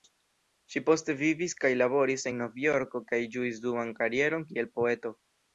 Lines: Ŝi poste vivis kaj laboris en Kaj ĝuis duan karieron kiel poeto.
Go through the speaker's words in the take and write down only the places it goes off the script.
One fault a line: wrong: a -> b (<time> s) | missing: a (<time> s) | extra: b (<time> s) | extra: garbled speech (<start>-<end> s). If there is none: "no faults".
extra: Novjorko (2.4 s)